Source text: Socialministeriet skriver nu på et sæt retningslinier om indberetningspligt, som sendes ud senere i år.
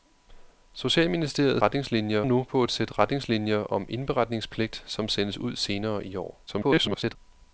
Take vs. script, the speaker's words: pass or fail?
fail